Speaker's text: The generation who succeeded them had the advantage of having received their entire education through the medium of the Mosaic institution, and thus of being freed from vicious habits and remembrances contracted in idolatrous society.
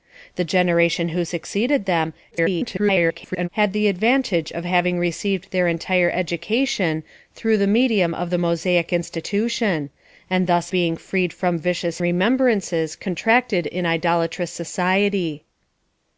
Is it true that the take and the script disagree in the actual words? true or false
true